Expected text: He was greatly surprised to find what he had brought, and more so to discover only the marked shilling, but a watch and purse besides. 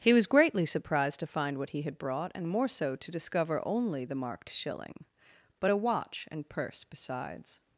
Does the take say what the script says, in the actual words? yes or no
yes